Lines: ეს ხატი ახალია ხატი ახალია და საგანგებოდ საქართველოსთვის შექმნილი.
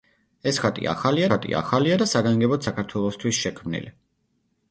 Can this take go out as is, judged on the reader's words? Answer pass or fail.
pass